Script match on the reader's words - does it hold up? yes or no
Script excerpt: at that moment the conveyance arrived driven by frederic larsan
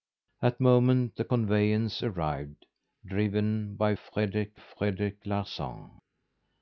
no